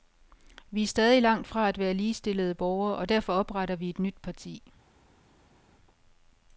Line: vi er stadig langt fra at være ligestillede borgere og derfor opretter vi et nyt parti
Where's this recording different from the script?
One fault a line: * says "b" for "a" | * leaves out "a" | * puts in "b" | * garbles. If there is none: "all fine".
all fine